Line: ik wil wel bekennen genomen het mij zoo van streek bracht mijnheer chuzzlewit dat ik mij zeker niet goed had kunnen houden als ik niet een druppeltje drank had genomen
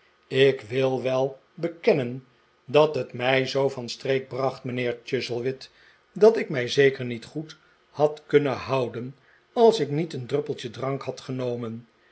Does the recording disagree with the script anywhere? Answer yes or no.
yes